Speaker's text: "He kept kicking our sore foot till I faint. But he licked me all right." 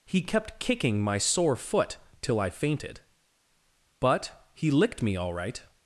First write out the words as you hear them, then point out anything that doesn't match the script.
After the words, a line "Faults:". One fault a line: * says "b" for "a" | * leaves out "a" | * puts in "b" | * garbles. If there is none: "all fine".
"He kept kicking my sore foot till I fainted. But he licked me all right."
Faults:
* says "my" for "our"
* says "fainted" for "faint"